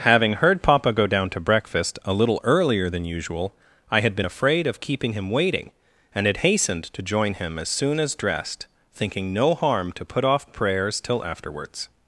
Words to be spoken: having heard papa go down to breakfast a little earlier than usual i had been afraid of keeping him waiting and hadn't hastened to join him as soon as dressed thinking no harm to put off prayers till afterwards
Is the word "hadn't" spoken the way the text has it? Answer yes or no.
no